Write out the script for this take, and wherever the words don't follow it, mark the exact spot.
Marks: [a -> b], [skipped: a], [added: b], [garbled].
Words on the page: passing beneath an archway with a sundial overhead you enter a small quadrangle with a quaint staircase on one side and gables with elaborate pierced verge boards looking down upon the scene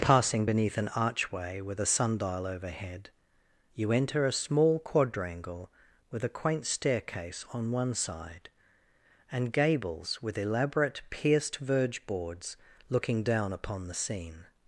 passing beneath an archway with a sundial overhead you enter a small quadrangle with a quaint staircase on one side and gables with elaborate pierced verge boards looking down upon the scene